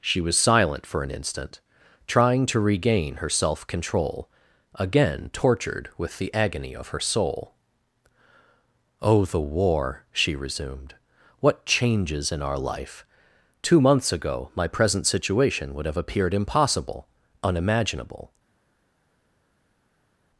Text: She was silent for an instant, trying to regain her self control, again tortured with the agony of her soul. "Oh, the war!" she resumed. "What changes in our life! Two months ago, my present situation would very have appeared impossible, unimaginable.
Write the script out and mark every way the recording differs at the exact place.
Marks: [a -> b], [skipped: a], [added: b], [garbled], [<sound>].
She was silent for an instant, trying to regain her self control, again tortured with the agony of her soul. "Oh, the war!" she resumed. "What changes in our life! Two months ago, my present situation would [skipped: very] have appeared impossible, unimaginable.